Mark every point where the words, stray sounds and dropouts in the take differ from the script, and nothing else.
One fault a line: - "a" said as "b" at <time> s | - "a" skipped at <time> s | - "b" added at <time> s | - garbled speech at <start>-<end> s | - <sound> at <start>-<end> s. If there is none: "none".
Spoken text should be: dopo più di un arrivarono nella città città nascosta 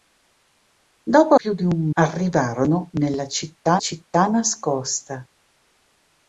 none